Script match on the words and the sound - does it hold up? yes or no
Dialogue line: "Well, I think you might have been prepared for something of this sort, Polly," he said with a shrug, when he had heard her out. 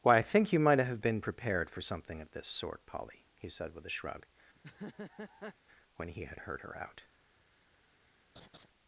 no